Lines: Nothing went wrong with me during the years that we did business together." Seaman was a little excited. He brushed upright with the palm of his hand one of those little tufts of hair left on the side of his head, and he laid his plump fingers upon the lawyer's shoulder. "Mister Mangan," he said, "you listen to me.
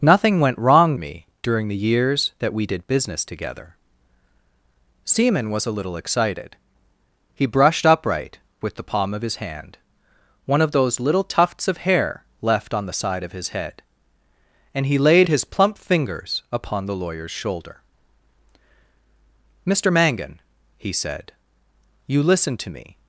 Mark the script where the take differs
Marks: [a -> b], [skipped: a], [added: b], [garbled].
Nothing went wrong [skipped: with] me during the years that we did business together." Seaman was a little excited. He brushed upright with the palm of his hand one of those little tufts of hair left on the side of his head, and he laid his plump fingers upon the lawyer's shoulder. "Mister Mangan," he said, "you listen to me.